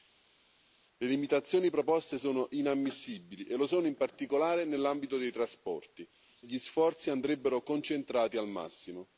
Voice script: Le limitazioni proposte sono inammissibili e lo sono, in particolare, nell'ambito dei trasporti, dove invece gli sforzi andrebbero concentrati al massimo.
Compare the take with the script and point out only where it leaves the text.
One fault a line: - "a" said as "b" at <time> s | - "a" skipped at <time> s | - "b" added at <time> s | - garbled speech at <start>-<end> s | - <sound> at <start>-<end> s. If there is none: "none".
- "dove invece" skipped at 6.1 s